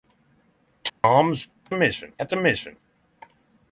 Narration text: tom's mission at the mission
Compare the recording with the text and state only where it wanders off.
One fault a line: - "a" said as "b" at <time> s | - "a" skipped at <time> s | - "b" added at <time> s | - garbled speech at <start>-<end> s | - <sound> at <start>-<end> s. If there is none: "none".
- dropout at 0.9-1.0 s